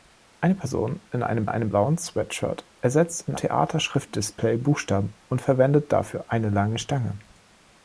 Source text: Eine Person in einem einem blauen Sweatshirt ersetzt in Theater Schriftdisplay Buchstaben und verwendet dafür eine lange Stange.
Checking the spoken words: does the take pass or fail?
pass